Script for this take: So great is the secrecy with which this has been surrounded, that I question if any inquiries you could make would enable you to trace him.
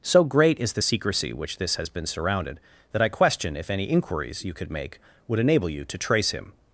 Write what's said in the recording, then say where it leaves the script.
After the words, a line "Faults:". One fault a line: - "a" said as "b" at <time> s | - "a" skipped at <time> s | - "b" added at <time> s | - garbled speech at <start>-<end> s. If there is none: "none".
So great is the secrecy which this has been surrounded, that I question if any inquiries you could make would enable you to trace him.
Faults:
- "with" skipped at 1.3 s